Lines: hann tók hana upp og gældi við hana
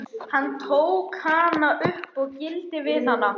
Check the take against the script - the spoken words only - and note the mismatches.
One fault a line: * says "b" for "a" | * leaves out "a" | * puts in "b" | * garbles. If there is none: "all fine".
all fine